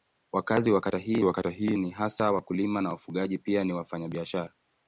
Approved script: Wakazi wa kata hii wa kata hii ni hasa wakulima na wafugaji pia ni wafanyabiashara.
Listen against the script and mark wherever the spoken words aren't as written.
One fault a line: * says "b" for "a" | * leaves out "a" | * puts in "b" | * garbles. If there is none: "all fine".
all fine